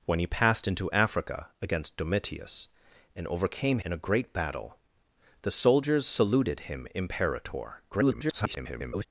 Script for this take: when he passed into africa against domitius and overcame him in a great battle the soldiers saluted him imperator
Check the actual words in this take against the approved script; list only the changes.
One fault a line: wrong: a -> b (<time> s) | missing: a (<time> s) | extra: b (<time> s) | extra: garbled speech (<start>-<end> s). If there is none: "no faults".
missing: him (3.8 s)
extra: garbled speech (7.9-9.0 s)